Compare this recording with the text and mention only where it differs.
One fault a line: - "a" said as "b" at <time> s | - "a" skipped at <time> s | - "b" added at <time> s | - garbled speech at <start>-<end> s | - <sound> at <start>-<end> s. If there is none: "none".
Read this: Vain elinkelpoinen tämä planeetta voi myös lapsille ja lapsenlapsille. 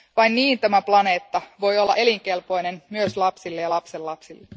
- "elinkelpoinen" said as "niin" at 0.3 s
- "olla elinkelpoinen" added at 1.8 s